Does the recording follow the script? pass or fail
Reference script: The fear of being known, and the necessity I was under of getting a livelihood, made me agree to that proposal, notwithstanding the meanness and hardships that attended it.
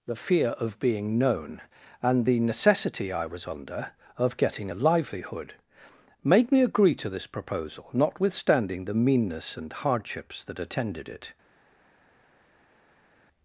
fail